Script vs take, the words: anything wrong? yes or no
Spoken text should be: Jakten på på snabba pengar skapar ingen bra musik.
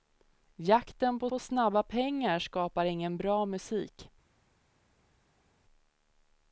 no